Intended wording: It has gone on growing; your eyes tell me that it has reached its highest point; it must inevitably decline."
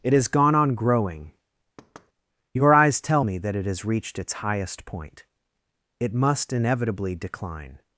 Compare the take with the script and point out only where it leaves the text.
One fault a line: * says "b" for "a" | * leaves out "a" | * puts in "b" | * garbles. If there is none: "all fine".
all fine